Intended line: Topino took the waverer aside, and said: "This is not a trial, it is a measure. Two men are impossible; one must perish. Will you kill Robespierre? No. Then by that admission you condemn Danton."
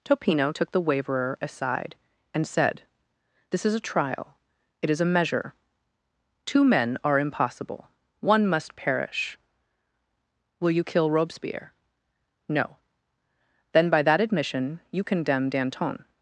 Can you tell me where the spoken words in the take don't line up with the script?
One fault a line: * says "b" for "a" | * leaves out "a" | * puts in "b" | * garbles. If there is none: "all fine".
* leaves out "not"